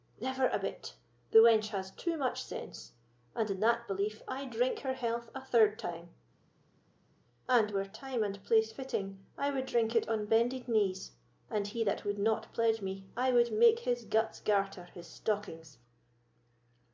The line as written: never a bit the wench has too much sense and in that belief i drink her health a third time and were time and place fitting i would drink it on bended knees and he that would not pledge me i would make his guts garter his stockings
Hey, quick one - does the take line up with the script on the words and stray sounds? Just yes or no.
yes